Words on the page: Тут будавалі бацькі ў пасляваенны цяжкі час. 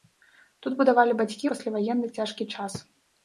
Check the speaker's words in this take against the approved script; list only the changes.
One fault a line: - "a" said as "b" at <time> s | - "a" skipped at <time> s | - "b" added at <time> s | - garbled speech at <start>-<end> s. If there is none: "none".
- "ў" skipped at 1.5 s